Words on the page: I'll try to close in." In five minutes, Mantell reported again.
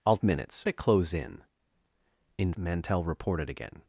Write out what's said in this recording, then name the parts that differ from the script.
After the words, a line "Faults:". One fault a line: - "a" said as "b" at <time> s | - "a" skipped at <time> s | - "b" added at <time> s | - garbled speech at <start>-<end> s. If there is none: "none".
I'll minutes to close in." In Mantell reported again.
Faults:
- "try" said as "minutes" at 0.2 s
- "five minutes" skipped at 2.5 s